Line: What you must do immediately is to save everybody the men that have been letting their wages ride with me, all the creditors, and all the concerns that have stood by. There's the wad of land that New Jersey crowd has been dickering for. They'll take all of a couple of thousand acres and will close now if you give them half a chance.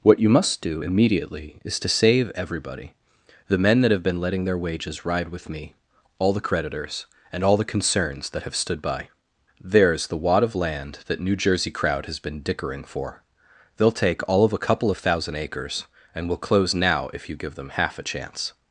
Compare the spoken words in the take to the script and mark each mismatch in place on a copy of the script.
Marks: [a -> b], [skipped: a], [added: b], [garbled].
What you must do immediately is to save everybody the men that have been letting their wages ride with me, all the creditors, and all the concerns that have stood by. There's the wad of land that New Jersey crowd has been dickering for. They'll take all of a couple of thousand acres and will close now if you give them half a chance.